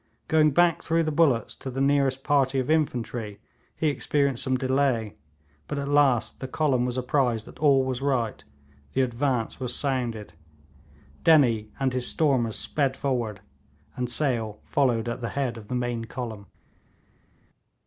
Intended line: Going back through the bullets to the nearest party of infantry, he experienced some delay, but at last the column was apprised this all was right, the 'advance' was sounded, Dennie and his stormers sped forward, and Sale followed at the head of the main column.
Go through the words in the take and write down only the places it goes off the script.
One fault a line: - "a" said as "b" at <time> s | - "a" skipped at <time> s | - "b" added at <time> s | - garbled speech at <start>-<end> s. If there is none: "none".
- "this" said as "that" at 7.5 s